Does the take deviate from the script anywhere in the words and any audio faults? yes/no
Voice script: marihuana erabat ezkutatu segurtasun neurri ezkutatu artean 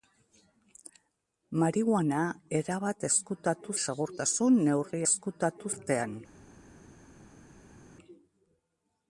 no